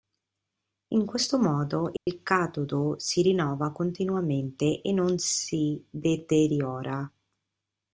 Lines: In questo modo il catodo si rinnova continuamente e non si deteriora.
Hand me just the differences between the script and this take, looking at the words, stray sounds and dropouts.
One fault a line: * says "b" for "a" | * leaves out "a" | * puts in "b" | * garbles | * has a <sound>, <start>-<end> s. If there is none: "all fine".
* has a dropout, 2.0-2.1 s